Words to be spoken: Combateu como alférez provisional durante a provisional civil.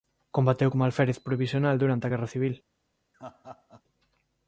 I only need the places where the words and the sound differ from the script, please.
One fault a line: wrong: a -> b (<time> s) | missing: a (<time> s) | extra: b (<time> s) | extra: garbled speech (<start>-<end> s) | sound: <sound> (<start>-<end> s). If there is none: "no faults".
wrong: provisional -> guerra (2.1 s)
sound: laugh (3.1-3.8 s)